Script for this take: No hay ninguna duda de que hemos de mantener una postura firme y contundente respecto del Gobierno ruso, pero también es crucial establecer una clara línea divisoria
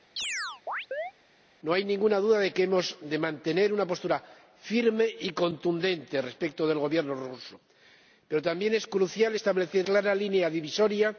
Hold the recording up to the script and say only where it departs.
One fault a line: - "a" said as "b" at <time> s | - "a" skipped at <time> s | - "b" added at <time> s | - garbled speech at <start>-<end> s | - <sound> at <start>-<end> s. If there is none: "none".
- chirp at 0.2-1.1 s
- "una" skipped at 9.9 s